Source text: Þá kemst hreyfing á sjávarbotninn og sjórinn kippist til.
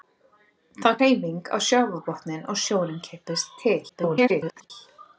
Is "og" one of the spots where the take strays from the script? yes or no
no